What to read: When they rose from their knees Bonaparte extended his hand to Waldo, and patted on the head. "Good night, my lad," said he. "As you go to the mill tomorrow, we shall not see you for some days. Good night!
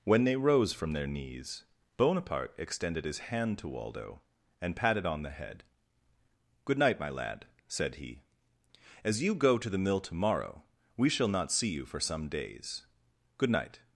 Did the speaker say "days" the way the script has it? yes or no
yes